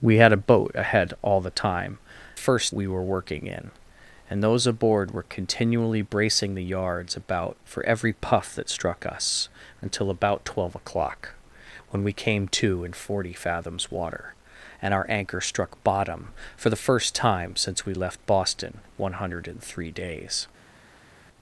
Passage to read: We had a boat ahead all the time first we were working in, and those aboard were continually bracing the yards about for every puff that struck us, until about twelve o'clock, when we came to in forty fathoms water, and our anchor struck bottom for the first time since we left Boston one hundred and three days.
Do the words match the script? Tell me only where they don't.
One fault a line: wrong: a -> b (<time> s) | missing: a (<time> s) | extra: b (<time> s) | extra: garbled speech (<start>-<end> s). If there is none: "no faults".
no faults